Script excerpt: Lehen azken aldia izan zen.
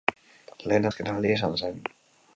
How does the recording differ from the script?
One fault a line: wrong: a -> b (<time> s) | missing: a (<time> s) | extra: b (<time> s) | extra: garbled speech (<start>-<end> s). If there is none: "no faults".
no faults